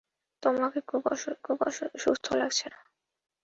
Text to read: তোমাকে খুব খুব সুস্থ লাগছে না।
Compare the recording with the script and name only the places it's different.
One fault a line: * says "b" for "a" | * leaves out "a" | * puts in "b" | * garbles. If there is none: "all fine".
all fine